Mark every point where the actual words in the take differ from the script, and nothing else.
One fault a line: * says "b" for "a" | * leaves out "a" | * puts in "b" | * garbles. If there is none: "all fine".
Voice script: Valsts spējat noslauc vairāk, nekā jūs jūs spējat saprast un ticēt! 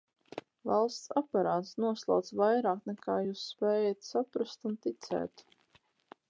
* says "aparāts" for "spējat"
* leaves out "jūs"